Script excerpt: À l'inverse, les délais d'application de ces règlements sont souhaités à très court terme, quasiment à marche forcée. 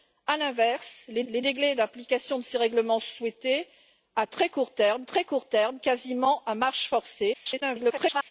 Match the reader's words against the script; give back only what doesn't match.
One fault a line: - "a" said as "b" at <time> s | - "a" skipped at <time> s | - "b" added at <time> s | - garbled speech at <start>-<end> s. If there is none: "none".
- "les" added at 1.3 s
- "très court terme" added at 5.0 s
- garbled speech at 7.3-8.3 s